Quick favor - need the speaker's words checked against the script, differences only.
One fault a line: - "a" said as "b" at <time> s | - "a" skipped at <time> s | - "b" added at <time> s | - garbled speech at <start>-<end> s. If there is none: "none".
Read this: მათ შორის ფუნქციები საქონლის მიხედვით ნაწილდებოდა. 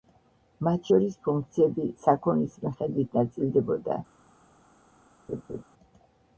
none